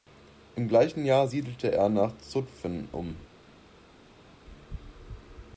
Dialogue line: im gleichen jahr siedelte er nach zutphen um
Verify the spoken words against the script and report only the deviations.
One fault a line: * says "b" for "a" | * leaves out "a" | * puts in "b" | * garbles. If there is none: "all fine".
all fine